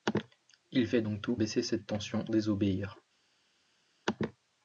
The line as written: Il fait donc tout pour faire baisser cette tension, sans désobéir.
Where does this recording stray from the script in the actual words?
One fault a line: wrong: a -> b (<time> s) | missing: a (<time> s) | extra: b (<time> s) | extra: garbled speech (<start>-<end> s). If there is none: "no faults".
missing: pour faire (1.4 s)
missing: sans (2.2 s)